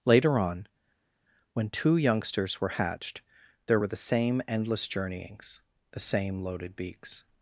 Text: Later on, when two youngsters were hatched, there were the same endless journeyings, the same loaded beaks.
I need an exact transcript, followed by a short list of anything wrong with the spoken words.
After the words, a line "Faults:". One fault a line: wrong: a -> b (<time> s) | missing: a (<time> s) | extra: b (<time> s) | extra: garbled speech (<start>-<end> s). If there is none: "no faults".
Later on, when two youngsters were hatched, there were the same endless journeyings, the same loaded beaks.
Faults:
no faults